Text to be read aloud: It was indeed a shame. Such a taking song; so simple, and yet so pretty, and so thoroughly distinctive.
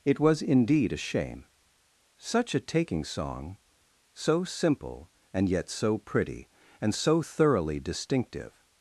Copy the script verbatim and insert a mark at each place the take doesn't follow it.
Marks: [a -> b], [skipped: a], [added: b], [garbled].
It was indeed a shame. Such a taking song; so simple, and yet so pretty, and so thoroughly distinctive.